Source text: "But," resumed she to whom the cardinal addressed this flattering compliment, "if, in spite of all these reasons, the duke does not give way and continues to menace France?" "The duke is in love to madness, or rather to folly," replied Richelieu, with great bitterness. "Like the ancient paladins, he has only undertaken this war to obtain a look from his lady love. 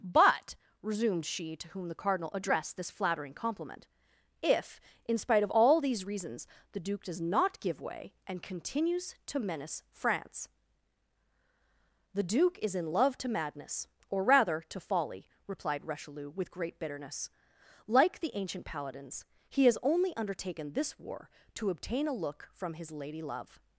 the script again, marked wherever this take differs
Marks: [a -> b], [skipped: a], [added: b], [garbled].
"But," resumed she to whom the cardinal addressed this flattering compliment, "if, in spite of all these reasons, the duke does not give way and continues to menace France?" "The duke is in love to madness, or rather to folly," replied Richelieu, with great bitterness. "Like the ancient paladins, he has only undertaken this war to obtain a look from his lady love.